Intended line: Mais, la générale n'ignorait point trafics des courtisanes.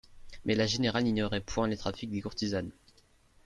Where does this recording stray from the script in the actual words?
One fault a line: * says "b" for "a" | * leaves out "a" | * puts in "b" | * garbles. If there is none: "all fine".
* puts in "les"